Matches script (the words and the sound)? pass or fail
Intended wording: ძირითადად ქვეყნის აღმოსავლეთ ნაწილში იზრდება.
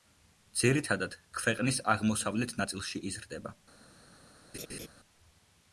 fail